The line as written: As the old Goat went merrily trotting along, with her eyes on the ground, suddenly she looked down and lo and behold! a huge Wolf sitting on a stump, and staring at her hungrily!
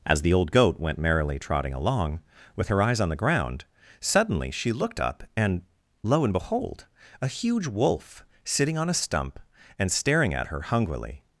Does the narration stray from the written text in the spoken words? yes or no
yes